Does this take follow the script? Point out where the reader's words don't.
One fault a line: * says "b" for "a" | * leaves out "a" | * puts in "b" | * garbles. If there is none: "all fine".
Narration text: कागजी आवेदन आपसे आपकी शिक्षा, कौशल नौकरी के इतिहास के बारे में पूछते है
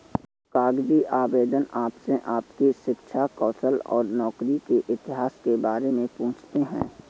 * puts in "और"